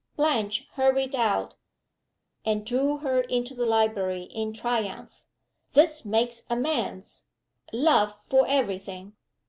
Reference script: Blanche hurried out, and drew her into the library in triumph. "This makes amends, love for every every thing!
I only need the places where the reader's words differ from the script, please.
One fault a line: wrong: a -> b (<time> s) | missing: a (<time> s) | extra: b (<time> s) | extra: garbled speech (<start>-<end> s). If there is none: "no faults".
missing: every (8.8 s)